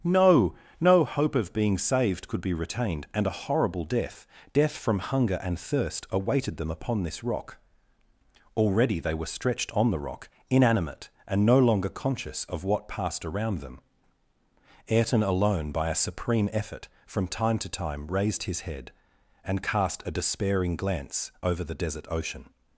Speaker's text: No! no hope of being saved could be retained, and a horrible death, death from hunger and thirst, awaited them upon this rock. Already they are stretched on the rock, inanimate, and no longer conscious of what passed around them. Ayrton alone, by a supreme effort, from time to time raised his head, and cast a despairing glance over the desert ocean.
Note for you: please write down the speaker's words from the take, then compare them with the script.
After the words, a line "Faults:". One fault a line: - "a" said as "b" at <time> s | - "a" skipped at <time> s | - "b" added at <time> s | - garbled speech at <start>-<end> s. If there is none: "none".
No! no hope of being saved could be retained, and a horrible death, death from hunger and thirst, awaited them upon this rock. Already they were stretched on the rock, inanimate, and no longer conscious of what passed around them. Ayrton alone, by a supreme effort, from time to time raised his head, and cast a despairing glance over the desert ocean.
Faults:
- "are" said as "were" at 9.1 s